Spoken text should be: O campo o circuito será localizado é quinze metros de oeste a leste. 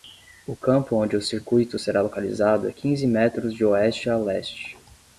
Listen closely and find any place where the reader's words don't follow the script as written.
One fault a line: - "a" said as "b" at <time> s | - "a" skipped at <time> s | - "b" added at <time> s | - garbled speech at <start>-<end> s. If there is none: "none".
- "onde" added at 0.9 s